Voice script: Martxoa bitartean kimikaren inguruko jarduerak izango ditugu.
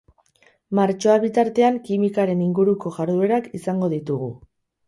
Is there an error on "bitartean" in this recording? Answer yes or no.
no